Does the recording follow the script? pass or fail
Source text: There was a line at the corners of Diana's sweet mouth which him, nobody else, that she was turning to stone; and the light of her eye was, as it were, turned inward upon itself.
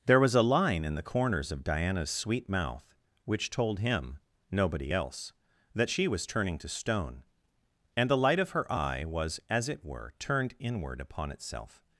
fail